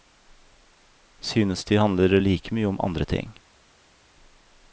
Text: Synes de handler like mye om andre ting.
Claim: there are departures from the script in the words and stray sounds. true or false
false